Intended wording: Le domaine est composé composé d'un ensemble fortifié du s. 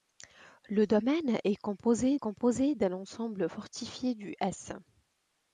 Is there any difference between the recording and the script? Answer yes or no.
no